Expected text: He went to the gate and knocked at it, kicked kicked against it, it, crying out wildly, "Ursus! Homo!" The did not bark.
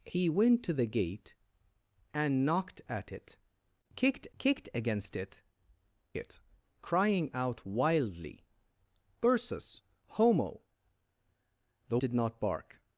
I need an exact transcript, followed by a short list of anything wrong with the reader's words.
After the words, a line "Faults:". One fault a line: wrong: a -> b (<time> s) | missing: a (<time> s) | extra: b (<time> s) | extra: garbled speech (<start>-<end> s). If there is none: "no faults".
He went to the gate and knocked at it, kicked kicked against it, it, crying out wildly, "Ursus! Homo!" The did not bark.
Faults:
no faults